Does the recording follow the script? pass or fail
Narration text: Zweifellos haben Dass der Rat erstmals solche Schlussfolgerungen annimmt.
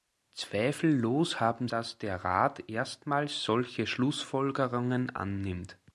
pass